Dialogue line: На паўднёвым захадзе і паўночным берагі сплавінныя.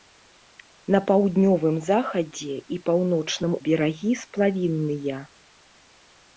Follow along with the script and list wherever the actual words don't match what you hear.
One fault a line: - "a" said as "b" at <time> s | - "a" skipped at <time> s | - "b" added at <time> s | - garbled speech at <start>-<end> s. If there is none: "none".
none